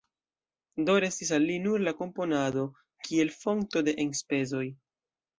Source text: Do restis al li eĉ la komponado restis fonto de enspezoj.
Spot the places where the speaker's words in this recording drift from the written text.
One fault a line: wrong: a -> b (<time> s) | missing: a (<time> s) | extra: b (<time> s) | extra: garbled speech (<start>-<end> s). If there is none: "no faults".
wrong: eĉ -> nur (1.6 s)
wrong: restis -> kiel (3.1 s)